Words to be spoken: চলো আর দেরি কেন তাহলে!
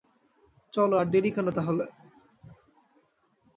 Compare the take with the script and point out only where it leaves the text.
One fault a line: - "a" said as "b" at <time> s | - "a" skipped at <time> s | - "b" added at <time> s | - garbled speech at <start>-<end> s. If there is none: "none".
none